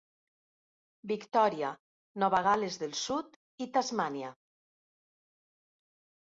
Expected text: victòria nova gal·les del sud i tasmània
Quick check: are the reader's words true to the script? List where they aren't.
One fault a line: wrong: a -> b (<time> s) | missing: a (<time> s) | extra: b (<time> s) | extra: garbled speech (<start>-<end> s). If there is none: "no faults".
no faults